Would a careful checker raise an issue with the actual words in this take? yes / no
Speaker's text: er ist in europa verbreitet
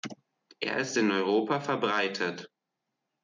no